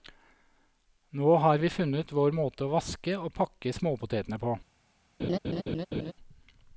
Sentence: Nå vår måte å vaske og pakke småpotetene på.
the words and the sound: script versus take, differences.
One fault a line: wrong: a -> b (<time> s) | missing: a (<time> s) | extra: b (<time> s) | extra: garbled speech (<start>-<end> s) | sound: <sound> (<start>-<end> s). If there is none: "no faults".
extra: har vi funnet (1.4 s)
sound: laugh (5.2-6.1 s)